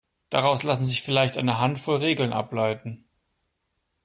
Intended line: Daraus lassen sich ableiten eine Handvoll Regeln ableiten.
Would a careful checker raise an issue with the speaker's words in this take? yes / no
yes